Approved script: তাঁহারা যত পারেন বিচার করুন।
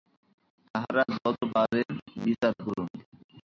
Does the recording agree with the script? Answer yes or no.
yes